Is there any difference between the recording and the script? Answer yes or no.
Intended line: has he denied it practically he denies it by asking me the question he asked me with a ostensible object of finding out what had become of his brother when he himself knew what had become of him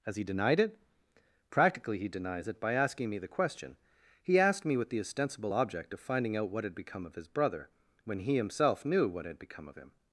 yes